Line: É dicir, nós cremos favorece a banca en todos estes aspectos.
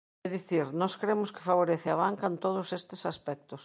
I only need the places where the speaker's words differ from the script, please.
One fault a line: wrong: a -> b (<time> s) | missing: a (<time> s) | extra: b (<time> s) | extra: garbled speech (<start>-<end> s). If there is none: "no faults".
extra: que (1.3 s)